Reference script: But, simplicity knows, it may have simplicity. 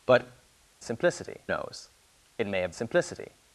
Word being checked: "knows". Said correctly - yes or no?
yes